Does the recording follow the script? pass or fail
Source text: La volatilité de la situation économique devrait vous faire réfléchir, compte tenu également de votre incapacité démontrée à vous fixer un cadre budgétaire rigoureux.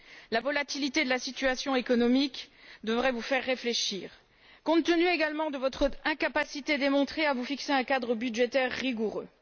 pass